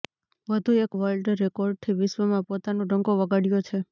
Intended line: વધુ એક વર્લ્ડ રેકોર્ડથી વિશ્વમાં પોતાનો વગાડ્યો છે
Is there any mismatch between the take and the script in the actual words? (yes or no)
yes